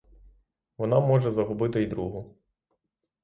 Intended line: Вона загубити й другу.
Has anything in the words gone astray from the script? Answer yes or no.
yes